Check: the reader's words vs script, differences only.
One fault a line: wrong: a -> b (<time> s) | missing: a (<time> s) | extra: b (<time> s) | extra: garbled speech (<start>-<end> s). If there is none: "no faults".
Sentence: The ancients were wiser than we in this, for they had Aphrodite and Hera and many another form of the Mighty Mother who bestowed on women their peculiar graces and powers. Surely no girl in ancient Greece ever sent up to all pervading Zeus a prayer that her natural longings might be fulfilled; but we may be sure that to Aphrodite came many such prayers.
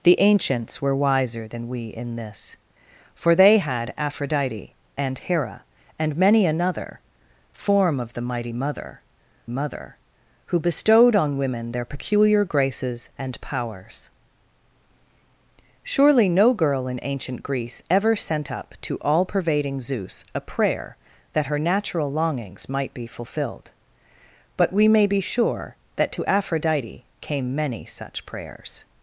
extra: Mother (9.5 s)